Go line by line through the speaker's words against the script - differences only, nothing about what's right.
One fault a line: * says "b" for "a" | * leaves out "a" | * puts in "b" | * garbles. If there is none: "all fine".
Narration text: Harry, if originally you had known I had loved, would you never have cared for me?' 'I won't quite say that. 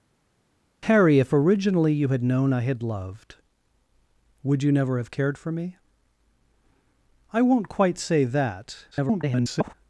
* garbles